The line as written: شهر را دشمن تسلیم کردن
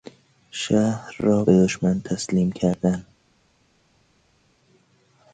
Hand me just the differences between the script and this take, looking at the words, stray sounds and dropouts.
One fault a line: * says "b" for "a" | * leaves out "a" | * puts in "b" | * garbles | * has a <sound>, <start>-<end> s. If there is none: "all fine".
* puts in "به"